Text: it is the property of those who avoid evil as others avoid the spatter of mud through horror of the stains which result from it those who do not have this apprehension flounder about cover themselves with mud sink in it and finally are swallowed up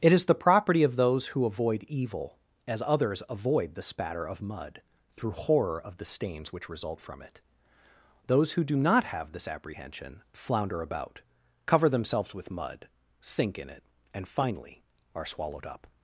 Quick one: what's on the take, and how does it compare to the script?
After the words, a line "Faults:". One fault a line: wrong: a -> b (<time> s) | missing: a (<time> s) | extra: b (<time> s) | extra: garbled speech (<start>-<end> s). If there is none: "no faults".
it is the property of those who avoid evil as others avoid the spatter of mud through horror of the stains which result from it those who do not have this apprehension flounder about cover themselves with mud sink in it and finally are swallowed up
Faults:
no faults